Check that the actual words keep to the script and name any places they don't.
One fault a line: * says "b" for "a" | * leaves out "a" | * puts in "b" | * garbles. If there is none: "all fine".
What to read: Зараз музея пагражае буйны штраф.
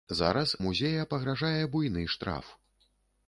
all fine